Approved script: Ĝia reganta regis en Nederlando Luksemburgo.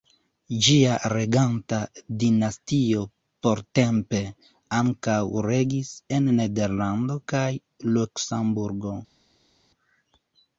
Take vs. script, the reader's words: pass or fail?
fail